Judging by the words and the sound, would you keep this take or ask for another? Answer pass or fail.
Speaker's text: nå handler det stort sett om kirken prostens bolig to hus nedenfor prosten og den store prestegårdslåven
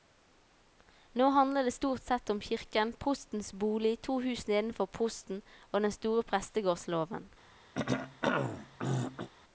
fail